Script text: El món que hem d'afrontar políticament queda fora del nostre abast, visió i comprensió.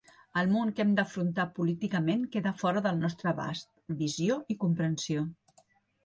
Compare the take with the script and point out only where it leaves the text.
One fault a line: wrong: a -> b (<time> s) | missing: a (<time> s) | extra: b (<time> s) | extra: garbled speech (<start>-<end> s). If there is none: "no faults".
no faults